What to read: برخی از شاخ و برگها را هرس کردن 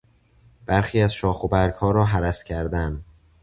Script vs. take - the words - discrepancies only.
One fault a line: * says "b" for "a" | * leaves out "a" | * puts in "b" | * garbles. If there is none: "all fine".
all fine